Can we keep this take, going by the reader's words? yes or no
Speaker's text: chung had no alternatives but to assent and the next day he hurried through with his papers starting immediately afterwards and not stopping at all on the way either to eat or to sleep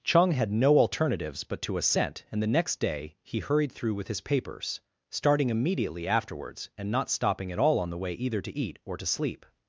yes